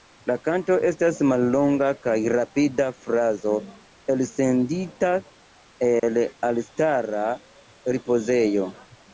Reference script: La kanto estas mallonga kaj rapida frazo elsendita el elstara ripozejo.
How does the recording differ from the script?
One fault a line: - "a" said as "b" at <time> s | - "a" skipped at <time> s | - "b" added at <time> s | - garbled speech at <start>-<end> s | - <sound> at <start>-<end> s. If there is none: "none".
- dropout at 6.0-6.0 s